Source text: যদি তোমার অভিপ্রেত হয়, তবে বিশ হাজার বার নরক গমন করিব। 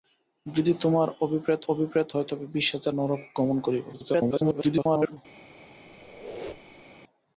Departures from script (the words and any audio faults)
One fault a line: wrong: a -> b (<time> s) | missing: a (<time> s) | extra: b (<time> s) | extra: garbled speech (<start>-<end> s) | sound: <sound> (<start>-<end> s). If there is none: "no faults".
extra: অভিপ্রেত (1.7 s)
missing: বার (2.9 s)
extra: garbled speech (3.9-5.2 s)
sound: squeak (5.9-7.0 s)